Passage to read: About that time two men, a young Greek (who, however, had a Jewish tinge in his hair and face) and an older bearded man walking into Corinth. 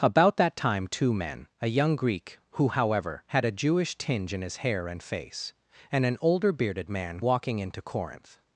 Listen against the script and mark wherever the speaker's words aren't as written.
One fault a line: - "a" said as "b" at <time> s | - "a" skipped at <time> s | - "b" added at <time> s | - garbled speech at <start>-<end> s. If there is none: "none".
none